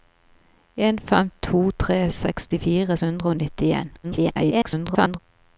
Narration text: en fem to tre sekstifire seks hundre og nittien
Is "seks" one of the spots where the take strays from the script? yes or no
yes